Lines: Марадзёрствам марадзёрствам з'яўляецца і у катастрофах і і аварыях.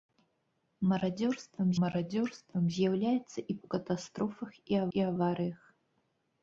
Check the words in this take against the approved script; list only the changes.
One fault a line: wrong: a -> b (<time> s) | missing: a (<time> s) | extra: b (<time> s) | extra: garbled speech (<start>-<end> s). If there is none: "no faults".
no faults